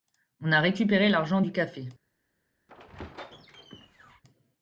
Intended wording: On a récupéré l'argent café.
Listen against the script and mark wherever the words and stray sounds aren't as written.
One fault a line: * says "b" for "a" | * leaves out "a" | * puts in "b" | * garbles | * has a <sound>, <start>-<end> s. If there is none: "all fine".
* puts in "du"
* has a squeak, 2.7-4.2 s